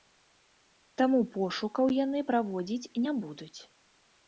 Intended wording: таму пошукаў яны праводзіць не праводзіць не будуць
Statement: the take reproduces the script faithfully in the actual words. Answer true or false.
false